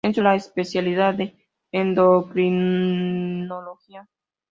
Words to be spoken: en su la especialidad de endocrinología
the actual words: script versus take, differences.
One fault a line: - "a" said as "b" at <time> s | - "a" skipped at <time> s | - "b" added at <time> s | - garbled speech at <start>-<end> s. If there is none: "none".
none